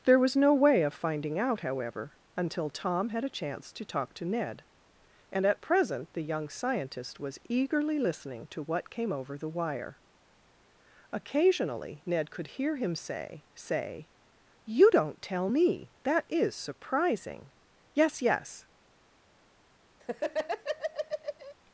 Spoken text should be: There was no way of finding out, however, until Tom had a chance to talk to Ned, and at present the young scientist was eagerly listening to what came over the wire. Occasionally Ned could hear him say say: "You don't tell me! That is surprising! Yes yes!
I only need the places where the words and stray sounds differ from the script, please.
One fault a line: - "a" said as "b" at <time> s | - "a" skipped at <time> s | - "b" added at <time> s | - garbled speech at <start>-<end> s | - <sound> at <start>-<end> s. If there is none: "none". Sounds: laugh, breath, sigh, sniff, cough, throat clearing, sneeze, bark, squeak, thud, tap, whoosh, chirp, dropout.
- laugh at 20.0-21.5 s